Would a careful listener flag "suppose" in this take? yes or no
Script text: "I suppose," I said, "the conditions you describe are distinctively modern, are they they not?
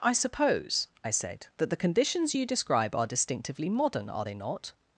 no